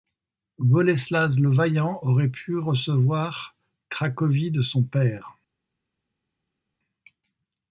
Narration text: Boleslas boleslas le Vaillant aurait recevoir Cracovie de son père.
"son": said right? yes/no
yes